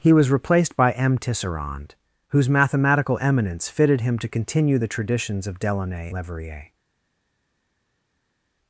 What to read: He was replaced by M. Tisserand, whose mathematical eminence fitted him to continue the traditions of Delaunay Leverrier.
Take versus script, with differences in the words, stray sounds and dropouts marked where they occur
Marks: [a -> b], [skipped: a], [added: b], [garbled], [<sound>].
He was replaced by M. Tisserand, whose mathematical eminence fitted him to continue the traditions of Delaunay Leverrier.